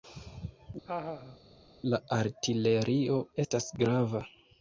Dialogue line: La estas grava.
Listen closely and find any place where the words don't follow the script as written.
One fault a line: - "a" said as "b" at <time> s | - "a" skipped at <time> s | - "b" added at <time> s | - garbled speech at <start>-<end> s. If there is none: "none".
- "artilerio" added at 2.2 s